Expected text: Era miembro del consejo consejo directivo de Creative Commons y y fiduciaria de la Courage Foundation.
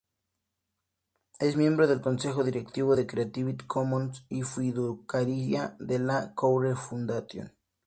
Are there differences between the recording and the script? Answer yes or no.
yes